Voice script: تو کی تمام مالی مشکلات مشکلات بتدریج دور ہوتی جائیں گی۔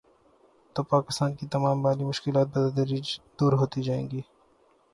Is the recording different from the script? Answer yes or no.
yes